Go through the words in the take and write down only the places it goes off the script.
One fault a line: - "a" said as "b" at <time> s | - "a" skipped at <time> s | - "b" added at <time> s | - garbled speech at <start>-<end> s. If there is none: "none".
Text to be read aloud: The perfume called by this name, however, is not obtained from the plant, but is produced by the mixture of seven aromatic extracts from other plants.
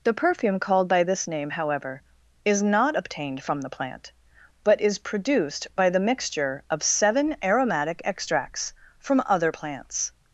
none